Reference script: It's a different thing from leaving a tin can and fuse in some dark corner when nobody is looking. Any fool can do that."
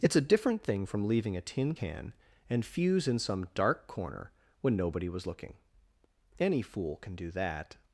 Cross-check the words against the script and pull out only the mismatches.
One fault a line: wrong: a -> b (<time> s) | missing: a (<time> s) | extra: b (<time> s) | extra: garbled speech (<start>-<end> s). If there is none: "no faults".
wrong: is -> was (5.1 s)